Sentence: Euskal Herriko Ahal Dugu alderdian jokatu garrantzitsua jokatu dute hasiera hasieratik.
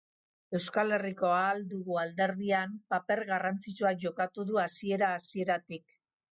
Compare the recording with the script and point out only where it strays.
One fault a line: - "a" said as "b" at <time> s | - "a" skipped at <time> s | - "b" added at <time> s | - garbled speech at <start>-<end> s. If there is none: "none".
- "jokatu" said as "paper" at 3.0 s
- "dute" said as "du" at 4.5 s